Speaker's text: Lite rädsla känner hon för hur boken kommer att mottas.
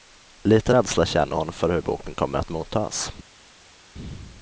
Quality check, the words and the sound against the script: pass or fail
pass